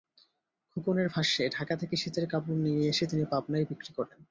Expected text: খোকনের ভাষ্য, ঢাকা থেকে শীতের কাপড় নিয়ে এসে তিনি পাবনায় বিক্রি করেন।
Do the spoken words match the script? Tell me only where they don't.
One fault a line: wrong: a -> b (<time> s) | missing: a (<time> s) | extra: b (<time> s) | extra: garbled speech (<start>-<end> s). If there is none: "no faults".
no faults